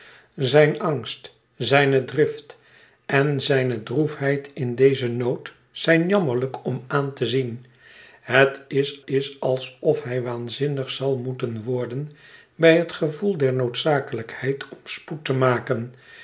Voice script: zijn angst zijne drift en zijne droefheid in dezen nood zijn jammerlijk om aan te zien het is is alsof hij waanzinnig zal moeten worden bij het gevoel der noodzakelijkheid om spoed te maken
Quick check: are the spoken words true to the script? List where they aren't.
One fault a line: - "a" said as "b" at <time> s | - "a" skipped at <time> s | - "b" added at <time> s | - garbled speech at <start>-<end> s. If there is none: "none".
none